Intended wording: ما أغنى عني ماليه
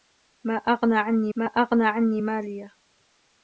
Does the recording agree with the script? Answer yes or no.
no